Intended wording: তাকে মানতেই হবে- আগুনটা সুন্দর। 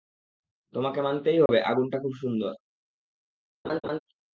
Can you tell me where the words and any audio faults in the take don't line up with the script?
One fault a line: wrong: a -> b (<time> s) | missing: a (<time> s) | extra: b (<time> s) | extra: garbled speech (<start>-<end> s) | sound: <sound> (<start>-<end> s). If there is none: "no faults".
wrong: তাকে -> তোমাকে (0.7 s)
sound: dropout (1.5-1.5 s)
extra: খুব (2.0 s)
sound: laugh (3.6-4.0 s)